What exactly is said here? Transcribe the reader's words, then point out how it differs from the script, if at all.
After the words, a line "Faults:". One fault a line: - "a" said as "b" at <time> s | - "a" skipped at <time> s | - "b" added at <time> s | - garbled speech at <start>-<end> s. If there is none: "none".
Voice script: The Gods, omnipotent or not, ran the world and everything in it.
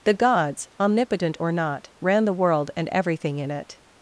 The Gods, omnipotent or not, ran the world and everything in it.
Faults:
none